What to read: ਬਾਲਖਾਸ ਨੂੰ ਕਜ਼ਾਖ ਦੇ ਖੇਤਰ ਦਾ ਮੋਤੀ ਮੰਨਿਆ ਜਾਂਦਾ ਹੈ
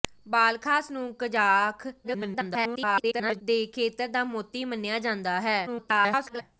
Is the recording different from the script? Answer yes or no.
yes